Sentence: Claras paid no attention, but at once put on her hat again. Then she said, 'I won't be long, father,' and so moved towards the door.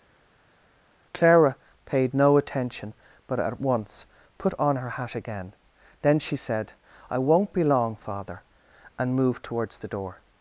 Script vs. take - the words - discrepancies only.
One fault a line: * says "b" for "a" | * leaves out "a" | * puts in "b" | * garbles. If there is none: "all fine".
* says "Clara" for "Claras"
* leaves out "so"